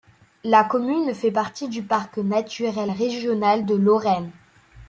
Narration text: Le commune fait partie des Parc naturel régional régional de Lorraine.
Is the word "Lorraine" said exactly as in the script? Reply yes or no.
yes